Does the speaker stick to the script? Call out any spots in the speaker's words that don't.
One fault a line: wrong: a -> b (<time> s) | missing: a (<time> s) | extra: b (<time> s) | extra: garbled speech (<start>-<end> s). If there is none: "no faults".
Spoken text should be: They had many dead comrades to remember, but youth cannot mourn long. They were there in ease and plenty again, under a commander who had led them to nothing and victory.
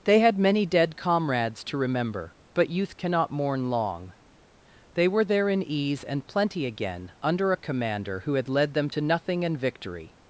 no faults